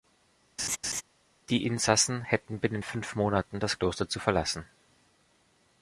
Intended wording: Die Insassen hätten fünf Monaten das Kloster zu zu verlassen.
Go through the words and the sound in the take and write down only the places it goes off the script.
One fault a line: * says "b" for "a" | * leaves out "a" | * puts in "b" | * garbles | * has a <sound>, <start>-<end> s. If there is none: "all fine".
* has a laugh, 0.6-1.0 s
* puts in "binnen"
* leaves out "zu"